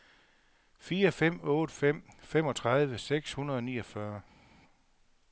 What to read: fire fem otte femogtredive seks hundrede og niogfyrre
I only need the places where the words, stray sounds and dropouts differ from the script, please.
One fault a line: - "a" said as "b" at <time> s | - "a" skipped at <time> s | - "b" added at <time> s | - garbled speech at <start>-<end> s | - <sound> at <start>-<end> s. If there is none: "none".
- "fem" added at 1.7 s